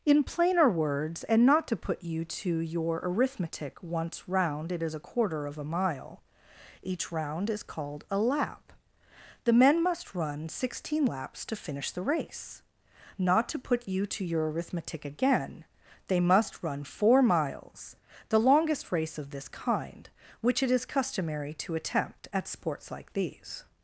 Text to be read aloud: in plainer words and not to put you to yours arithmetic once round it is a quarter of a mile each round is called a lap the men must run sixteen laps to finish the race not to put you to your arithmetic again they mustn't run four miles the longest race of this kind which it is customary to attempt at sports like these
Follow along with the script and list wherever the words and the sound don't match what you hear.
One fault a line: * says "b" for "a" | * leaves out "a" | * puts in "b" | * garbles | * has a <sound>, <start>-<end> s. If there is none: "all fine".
* says "your" for "yours"
* says "must" for "mustn't"